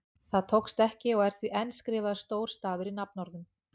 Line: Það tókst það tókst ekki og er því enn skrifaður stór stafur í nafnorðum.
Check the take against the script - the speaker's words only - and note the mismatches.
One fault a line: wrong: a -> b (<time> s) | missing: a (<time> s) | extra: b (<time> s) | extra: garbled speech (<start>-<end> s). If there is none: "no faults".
missing: það tókst (0.8 s)